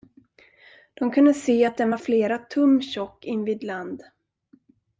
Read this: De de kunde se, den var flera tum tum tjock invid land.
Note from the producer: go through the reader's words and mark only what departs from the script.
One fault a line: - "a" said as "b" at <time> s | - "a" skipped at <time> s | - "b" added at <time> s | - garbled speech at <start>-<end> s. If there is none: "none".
- "de" skipped at 1.1 s
- "att" added at 1.6 s
- "tum" skipped at 2.8 s